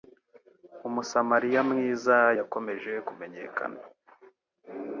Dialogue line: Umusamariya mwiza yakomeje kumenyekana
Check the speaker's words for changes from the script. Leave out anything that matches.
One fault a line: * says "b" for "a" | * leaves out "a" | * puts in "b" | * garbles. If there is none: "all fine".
all fine